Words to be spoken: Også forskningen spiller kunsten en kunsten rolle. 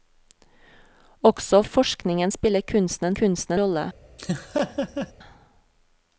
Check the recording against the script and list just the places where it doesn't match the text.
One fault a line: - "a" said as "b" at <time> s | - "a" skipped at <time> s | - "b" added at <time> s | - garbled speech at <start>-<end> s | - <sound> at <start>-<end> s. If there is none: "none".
- laugh at 4.2-5.1 s